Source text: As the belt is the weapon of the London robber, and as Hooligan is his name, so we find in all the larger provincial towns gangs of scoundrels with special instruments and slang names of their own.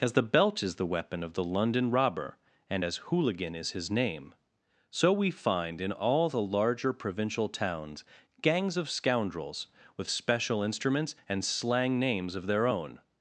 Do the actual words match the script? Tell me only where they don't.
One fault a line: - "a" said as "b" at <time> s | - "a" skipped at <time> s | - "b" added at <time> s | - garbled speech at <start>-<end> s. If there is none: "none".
none